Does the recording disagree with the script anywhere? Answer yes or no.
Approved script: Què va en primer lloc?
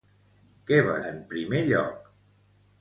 no